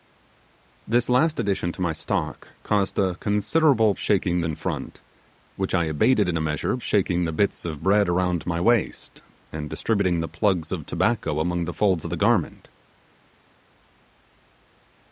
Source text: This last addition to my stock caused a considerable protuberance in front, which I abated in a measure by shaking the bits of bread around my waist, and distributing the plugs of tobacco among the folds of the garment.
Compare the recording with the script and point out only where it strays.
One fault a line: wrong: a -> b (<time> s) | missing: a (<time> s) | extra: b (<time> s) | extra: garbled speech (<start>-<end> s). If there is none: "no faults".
wrong: protuberance -> shaking (4.0 s)
missing: by (6.8 s)